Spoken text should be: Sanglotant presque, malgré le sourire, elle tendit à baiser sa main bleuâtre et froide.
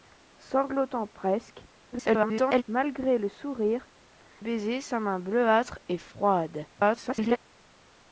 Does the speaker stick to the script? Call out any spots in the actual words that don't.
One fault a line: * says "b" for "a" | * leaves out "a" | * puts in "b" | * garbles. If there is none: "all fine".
* garbles
* leaves out "elle tendit à"
* garbles